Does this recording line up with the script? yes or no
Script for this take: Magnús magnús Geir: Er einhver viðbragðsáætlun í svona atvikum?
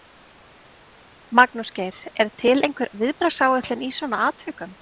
no